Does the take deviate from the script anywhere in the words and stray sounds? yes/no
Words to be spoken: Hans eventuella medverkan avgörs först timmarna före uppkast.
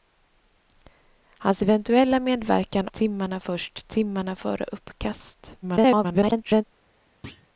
yes